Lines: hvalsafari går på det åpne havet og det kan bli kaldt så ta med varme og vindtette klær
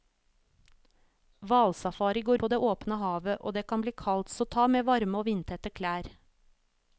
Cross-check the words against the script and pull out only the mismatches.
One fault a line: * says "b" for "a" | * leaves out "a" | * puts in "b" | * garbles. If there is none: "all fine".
all fine